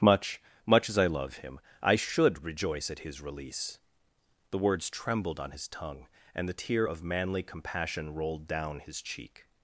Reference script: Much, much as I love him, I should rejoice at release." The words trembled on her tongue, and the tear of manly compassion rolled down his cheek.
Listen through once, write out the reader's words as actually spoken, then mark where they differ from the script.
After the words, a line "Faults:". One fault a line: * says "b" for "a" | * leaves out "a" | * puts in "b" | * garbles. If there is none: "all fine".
Much, much as I love him, I should rejoice at his release." The words trembled on his tongue, and the tear of manly compassion rolled down his cheek.
Faults:
* puts in "his"
* says "his" for "her"